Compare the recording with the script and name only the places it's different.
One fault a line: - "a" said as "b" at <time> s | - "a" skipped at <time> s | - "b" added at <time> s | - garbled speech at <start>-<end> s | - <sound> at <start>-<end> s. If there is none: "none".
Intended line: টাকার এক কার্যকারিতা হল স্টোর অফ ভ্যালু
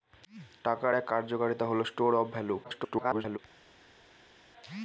- garbled speech at 2.6-3.4 s